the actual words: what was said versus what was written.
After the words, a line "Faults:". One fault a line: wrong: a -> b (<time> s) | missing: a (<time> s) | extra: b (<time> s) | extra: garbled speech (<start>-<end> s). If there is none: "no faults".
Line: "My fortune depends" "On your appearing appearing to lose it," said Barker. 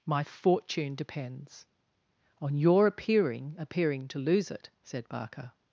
"My fortune depends" "On your appearing appearing to lose it," said Barker.
Faults:
no faults